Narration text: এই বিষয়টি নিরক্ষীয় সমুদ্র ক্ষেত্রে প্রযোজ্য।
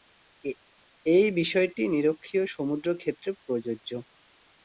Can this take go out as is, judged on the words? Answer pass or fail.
pass